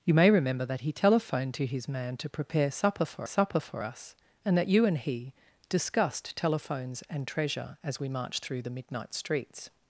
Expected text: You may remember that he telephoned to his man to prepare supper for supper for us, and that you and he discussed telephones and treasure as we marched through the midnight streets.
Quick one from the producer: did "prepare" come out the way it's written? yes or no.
yes